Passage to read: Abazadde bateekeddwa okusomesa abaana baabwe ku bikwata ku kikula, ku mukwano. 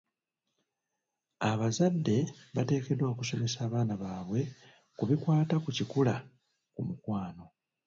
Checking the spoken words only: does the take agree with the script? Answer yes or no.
yes